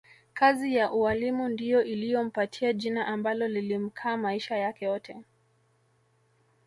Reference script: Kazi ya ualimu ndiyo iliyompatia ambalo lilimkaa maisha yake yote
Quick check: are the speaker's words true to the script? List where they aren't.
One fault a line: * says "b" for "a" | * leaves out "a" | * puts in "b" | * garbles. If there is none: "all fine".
* puts in "jina"